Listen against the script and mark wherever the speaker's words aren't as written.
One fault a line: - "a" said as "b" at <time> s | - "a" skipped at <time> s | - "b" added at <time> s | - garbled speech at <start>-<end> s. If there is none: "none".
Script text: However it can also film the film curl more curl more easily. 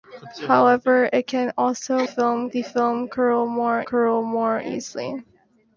none